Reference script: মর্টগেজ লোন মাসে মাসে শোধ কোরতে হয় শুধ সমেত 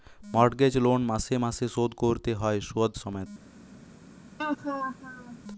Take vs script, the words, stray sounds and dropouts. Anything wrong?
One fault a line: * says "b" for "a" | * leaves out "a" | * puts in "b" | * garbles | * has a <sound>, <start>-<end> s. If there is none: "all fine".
* has a laugh, 4.4-5.4 s